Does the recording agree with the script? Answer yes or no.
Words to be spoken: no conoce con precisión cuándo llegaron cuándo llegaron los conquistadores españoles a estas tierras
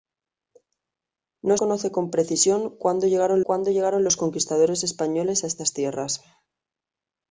yes